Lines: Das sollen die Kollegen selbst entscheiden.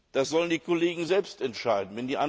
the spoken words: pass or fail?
pass